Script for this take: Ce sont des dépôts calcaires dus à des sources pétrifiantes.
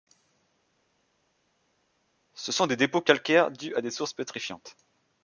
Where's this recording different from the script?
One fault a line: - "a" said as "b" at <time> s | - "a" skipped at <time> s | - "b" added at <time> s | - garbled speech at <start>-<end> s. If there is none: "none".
none